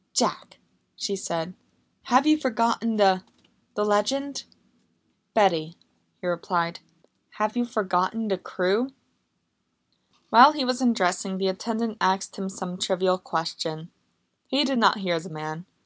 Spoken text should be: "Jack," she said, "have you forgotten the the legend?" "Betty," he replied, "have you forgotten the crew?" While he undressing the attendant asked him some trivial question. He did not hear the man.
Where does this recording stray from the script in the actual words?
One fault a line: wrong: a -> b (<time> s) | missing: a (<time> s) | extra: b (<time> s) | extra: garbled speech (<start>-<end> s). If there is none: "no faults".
extra: was (10.7 s)